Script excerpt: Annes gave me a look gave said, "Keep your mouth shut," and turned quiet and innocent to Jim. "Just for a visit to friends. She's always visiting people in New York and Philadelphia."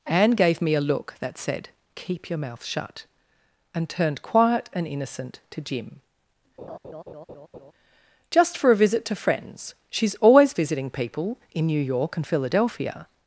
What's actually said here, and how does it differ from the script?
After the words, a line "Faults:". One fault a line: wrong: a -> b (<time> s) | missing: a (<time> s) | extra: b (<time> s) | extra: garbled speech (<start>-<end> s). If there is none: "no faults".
Anne gave me a look that said, "Keep your mouth shut," and turned quiet and innocent to Jim. "Just for a visit to friends. She's always visiting people in New York and Philadelphia."
Faults:
wrong: Annes -> Anne (0.1 s)
wrong: gave -> that (1.2 s)